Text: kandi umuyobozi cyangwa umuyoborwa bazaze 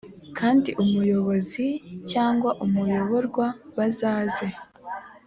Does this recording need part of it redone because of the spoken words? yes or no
no